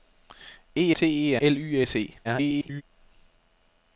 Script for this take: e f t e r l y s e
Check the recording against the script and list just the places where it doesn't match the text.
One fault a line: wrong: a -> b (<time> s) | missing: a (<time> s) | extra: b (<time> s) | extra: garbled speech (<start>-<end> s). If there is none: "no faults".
missing: f (0.9 s)
missing: r (1.3 s)
extra: garbled speech (2.2-2.8 s)